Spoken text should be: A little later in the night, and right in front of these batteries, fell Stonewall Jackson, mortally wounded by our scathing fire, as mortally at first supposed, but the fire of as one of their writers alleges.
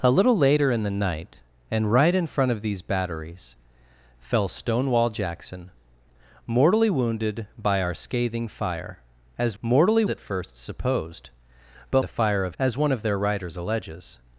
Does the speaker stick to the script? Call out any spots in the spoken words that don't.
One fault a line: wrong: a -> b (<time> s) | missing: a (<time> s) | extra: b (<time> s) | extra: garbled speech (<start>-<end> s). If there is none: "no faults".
no faults